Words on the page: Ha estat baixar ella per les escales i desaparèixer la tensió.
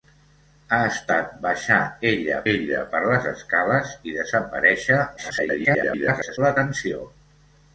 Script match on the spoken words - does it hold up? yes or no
no